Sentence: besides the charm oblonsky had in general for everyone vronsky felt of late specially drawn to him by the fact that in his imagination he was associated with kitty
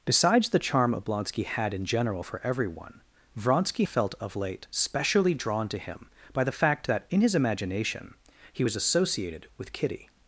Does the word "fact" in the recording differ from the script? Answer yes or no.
no